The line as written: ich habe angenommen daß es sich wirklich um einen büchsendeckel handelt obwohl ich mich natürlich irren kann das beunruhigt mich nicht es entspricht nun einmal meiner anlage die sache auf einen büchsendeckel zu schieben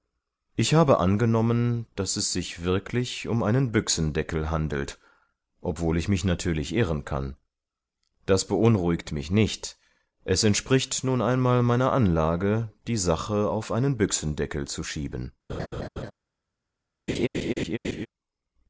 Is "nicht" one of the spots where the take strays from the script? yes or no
no